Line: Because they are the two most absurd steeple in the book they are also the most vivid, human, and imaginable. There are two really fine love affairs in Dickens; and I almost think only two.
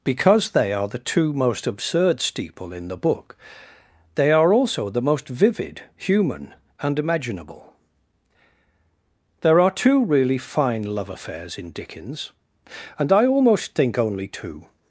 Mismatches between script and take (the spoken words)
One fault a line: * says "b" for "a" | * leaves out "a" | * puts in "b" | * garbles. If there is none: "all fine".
all fine